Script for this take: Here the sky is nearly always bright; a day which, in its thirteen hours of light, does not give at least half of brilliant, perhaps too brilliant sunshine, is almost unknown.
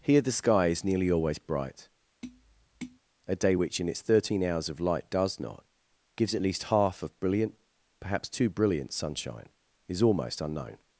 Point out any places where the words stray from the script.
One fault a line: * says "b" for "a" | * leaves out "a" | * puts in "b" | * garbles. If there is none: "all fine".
* says "gives" for "give"